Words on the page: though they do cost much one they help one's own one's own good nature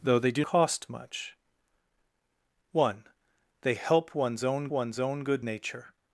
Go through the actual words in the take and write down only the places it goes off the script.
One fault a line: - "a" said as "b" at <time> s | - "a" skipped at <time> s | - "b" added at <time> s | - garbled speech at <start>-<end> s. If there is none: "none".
none